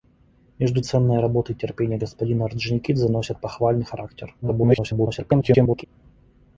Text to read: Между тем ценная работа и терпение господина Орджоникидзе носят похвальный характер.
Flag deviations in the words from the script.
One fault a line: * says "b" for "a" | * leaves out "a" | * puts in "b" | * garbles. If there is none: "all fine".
* leaves out "тем"
* garbles